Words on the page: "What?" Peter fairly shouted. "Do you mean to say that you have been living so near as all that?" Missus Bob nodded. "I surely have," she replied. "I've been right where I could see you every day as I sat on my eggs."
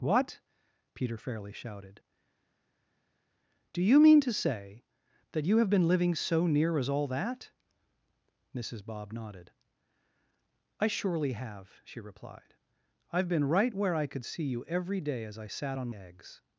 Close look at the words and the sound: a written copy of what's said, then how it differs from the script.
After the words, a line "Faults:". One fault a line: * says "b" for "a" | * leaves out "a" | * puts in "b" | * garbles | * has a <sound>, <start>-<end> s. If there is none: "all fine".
"What?" Peter fairly shouted. "Do you mean to say that you have been living so near as all that?" Missus Bob nodded. "I surely have," she replied. "I've been right where I could see you every day as I sat on eggs."
Faults:
* leaves out "my"